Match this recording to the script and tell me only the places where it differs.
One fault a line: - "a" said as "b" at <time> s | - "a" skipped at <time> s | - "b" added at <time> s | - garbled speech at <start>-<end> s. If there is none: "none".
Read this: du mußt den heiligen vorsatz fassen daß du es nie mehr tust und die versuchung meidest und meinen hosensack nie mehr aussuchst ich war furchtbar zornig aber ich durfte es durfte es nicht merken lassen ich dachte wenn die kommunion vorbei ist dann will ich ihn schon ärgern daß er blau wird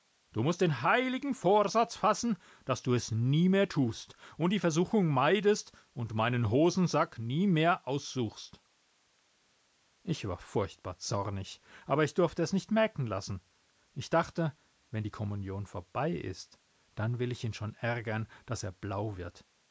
- "durfte es" skipped at 12.5 s